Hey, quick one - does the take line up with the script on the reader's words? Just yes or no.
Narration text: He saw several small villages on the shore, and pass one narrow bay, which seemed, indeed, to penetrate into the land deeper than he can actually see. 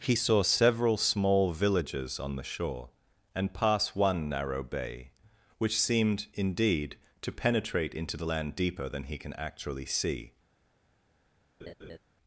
yes